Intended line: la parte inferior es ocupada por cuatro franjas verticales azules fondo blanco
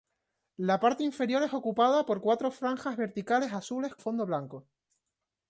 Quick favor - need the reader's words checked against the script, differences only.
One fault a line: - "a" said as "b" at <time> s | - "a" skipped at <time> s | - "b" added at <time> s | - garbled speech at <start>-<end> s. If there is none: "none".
none